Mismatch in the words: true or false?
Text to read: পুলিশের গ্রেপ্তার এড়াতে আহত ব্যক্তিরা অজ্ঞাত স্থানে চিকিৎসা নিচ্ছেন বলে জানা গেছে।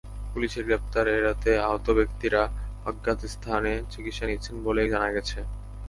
false